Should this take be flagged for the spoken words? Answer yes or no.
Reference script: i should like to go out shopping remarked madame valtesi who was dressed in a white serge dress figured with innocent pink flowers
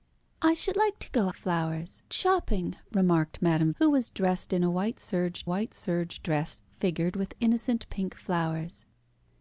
yes